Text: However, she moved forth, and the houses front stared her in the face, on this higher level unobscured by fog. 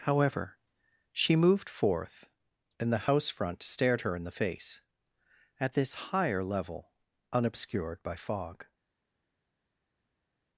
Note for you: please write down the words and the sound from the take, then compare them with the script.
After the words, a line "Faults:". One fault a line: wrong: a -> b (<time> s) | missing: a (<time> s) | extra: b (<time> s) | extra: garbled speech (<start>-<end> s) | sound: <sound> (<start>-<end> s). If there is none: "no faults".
However, she moved forth, and the house front stared her in the face, at this higher level unobscured by fog.
Faults:
wrong: houses -> house (3.1 s)
wrong: on -> at (5.6 s)